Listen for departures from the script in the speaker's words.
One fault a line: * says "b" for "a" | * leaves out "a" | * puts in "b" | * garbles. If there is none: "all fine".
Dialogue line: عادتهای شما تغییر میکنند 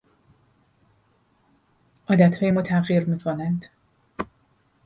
* says "ما" for "شما"